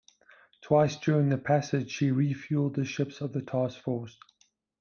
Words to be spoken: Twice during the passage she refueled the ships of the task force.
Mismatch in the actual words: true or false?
false